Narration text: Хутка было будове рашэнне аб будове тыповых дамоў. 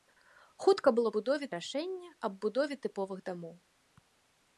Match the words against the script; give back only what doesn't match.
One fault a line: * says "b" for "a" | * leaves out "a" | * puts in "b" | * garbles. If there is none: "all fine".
all fine